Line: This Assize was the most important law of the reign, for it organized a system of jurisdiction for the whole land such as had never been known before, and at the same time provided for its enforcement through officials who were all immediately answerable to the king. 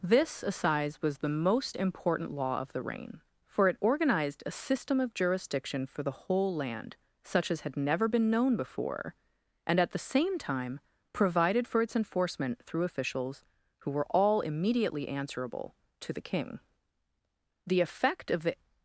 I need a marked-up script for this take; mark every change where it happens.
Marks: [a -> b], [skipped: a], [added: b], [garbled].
This Assize was the most important law of the reign, for it organized a system of jurisdiction for the whole land such as had never been known before, and at the same time provided for its enforcement through officials who were all immediately answerable to the king. [added: The effect of the]